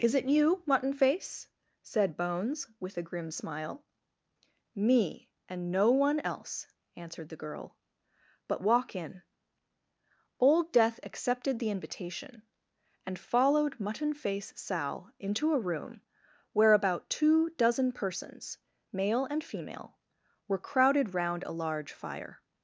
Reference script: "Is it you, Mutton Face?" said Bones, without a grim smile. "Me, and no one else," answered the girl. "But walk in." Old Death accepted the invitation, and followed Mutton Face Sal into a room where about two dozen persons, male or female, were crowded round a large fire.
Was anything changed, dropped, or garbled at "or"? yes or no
yes